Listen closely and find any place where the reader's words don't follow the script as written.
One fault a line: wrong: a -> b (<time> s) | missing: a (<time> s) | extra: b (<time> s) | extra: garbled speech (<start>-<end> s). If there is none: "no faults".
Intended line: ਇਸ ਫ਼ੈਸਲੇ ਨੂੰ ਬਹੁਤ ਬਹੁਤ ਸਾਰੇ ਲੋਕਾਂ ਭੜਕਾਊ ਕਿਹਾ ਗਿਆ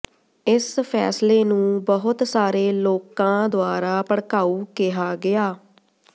missing: ਬਹੁਤ (2.2 s)
extra: ਦੁਆਰਾ (3.5 s)